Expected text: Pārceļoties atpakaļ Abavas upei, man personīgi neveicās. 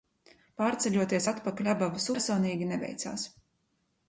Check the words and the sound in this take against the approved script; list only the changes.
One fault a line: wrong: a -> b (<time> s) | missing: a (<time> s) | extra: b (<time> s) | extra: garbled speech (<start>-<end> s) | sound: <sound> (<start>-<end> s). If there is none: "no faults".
missing: upei man (2.1 s)